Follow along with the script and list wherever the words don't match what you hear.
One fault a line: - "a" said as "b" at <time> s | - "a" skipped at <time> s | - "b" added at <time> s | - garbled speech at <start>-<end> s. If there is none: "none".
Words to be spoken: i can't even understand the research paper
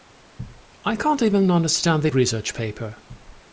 none